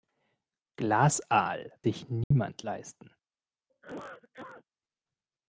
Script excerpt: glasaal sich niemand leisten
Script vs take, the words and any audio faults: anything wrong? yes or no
yes